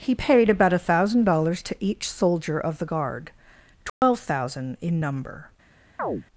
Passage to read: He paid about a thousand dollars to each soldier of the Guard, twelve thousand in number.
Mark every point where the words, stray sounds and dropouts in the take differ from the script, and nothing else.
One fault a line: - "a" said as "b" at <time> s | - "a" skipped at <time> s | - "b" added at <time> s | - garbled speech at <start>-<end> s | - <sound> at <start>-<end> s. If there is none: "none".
- dropout at 3.9-4.0 s
- chirp at 6.0-6.2 s